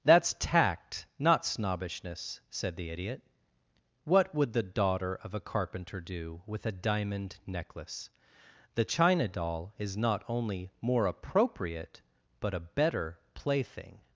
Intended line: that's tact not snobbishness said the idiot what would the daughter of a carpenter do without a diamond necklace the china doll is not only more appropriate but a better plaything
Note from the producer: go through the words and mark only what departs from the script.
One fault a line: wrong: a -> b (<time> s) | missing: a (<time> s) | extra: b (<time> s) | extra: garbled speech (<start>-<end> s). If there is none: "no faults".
wrong: without -> with (6.5 s)